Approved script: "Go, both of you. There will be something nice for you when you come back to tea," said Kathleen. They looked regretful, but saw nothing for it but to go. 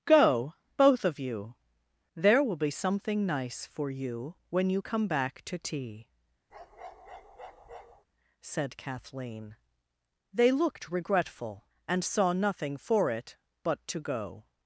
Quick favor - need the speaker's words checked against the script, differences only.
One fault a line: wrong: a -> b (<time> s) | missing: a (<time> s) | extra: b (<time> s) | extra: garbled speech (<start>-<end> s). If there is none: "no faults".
wrong: but -> and (11.9 s)